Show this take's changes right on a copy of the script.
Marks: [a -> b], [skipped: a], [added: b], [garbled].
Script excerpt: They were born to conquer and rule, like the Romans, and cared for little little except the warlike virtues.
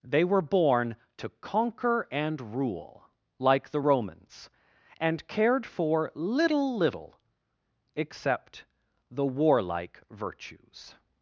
They were born to conquer and rule, like the Romans, and cared for little little except the warlike virtues.